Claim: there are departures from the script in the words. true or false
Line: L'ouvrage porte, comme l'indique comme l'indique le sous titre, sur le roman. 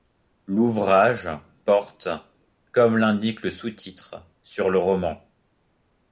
true